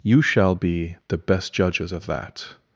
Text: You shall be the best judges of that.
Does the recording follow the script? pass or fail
pass